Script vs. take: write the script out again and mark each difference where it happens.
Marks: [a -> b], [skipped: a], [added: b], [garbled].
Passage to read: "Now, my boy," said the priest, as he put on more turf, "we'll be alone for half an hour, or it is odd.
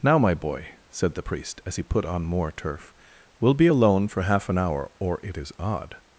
"Now, my boy," said the priest, as he put on more turf, "we'll be alone for half an hour, or it is odd.